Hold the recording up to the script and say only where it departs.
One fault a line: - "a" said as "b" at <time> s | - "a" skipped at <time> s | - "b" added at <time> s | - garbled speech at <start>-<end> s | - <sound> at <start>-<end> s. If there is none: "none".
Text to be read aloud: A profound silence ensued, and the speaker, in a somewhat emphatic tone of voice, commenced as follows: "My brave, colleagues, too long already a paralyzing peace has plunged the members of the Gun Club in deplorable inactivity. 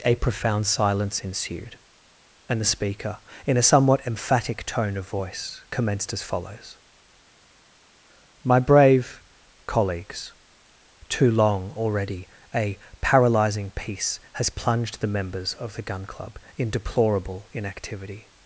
none